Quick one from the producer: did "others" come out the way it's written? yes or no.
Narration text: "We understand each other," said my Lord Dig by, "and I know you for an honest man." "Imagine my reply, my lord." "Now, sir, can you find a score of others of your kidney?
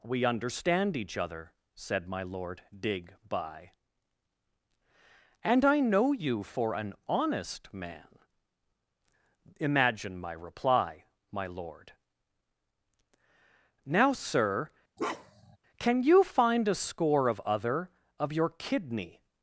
no